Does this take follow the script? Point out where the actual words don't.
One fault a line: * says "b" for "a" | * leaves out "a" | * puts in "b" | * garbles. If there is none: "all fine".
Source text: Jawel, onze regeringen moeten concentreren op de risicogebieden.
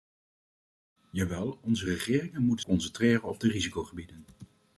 all fine